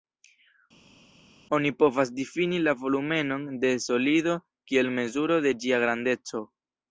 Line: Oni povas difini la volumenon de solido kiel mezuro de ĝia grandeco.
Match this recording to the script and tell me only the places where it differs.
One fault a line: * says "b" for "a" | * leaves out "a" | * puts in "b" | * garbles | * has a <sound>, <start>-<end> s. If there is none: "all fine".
all fine